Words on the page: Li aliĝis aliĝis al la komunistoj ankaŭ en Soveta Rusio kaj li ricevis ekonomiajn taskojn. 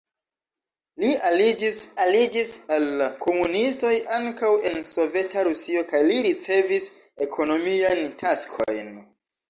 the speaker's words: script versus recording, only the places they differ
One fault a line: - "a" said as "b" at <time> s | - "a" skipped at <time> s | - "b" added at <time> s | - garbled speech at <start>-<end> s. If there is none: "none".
none